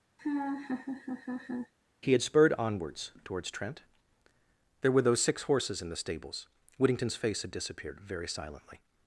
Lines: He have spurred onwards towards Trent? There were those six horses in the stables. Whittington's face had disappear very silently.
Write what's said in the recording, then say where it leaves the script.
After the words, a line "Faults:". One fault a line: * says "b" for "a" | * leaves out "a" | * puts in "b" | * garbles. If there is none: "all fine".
He had spurred onwards towards Trent? There were those six horses in the stables. Whittington's face had disappeared very silently.
Faults:
* says "had" for "have"
* says "disappeared" for "disappear"